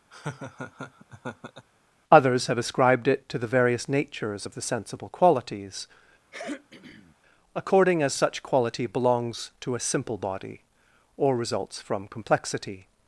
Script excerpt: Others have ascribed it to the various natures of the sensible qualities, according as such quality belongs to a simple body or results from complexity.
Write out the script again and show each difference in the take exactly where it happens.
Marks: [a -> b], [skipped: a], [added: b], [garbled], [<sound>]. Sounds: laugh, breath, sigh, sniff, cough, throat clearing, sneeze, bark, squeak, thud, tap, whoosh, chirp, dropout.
[laugh] Others have ascribed it to the various natures of the sensible qualities, [throat clearing] according as such quality belongs to a simple body or results from complexity.